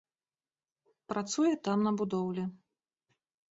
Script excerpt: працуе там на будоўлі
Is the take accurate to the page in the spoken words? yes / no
yes